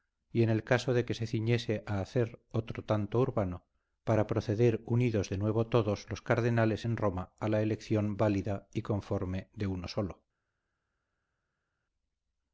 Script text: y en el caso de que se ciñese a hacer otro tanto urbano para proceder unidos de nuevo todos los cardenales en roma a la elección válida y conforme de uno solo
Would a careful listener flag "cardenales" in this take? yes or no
no